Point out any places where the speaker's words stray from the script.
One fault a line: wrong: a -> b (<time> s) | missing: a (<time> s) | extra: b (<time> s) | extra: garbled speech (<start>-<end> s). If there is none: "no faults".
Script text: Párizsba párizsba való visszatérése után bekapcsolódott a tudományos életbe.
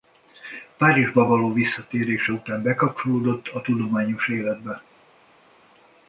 missing: párizsba (1.3 s)